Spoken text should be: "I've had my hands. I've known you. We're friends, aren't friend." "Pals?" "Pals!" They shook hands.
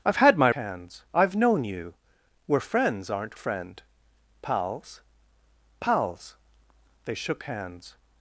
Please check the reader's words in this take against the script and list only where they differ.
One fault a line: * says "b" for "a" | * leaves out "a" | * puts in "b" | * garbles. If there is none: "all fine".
all fine